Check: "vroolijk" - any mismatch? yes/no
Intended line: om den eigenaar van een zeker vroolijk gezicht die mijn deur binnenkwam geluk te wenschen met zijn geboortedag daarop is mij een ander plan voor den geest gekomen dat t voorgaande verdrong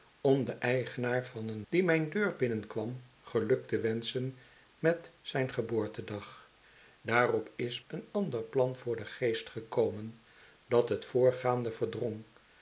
yes